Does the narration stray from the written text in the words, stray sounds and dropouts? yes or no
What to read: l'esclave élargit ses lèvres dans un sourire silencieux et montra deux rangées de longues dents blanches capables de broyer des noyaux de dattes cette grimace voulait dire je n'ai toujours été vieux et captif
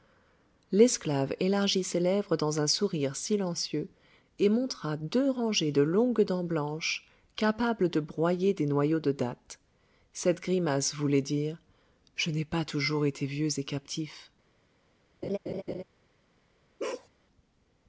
yes